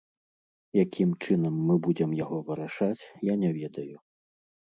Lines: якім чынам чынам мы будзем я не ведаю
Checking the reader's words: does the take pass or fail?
fail